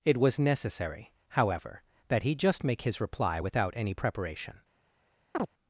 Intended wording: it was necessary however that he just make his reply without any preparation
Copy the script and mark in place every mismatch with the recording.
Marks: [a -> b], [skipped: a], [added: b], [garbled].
it was necessary however that he just make his reply without any preparation